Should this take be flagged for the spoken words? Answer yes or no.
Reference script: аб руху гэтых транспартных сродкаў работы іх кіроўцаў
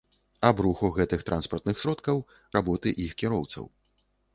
no